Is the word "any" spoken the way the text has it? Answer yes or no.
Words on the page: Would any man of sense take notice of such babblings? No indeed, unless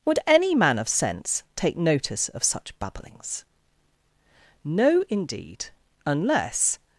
yes